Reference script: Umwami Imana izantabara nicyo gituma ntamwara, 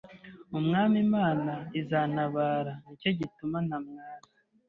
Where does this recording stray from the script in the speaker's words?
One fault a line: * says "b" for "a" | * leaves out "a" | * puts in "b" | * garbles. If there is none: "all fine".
all fine